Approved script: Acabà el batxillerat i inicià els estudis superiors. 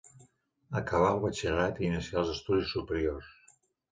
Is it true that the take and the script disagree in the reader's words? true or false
false